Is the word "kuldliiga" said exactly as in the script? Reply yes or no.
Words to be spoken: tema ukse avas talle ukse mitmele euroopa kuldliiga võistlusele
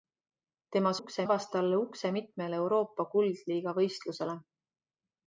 yes